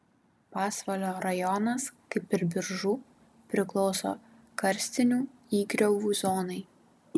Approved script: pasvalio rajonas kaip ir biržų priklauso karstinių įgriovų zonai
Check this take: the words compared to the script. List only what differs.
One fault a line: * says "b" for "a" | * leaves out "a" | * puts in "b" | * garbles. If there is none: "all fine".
all fine